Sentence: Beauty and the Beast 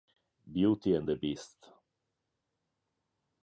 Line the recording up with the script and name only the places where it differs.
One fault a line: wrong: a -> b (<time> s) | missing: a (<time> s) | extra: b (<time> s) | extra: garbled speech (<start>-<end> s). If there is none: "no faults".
no faults